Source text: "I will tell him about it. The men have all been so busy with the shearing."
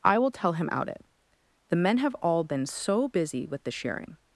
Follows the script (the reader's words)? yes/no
no